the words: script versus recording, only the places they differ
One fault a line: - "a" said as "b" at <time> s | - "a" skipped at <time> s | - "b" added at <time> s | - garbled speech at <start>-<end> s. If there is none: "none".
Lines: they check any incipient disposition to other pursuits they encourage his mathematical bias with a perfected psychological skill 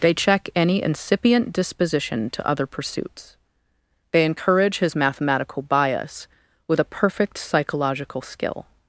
- "perfected" said as "perfect" at 6.8 s